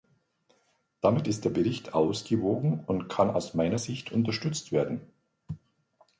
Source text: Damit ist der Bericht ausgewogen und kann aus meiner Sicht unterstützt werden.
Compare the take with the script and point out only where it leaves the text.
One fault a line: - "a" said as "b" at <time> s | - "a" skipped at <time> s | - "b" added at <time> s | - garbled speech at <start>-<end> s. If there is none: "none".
none